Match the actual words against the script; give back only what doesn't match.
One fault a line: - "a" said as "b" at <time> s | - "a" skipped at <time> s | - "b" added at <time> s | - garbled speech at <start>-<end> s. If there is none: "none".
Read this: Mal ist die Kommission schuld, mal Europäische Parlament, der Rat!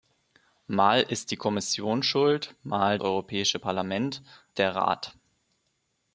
none